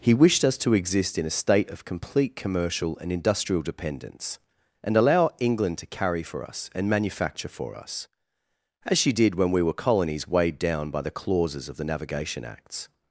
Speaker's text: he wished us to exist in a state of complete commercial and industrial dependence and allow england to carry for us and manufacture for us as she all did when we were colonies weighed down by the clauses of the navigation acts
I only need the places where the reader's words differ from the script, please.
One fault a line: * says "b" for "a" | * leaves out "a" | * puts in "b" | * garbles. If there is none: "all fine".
* leaves out "all"